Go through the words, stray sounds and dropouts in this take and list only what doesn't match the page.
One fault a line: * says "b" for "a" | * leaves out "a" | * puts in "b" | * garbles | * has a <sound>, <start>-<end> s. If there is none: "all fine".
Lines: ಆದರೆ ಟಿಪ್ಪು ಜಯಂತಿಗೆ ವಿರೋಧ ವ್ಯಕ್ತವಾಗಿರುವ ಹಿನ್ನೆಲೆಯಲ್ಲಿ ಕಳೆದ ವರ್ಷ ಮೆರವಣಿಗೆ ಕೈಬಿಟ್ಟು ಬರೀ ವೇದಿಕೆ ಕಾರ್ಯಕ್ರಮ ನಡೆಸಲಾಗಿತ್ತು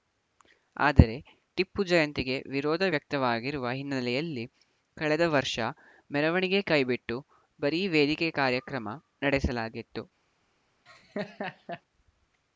* has a laugh, 10.9-11.8 s